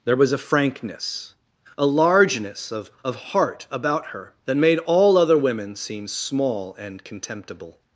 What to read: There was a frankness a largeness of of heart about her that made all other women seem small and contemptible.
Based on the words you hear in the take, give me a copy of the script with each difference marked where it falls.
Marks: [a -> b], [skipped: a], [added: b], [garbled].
There was a frankness a largeness of of heart about her that made all other women seem small and contemptible.